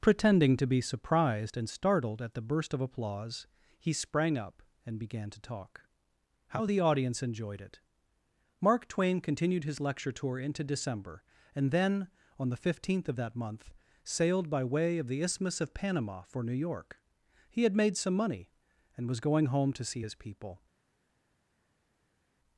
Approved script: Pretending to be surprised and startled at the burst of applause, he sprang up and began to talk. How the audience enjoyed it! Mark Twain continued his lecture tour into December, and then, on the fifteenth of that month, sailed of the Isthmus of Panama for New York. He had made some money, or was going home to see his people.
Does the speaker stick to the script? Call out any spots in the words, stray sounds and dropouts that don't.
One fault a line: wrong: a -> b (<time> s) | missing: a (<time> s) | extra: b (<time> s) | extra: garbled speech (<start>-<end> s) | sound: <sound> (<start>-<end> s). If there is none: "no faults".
extra: by way (14.5 s)
wrong: or -> and (19.0 s)